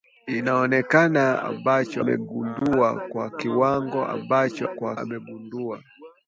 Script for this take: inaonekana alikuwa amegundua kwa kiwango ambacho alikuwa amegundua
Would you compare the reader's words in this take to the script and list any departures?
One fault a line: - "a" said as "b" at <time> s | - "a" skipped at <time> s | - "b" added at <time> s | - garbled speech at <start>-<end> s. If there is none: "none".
- "alikuwa" said as "ambacho" at 1.4 s
- "alikuwa" said as "kwa" at 4.7 s